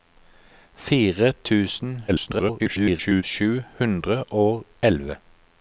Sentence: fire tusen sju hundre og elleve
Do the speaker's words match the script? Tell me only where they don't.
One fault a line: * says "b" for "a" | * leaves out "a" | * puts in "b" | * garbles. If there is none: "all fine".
* garbles